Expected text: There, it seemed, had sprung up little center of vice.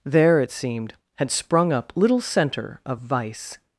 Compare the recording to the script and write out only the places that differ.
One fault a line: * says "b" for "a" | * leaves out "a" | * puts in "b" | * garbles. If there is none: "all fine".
all fine